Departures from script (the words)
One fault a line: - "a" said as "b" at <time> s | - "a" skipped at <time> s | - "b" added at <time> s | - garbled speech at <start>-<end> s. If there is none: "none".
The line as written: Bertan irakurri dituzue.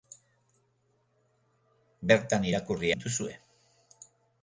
none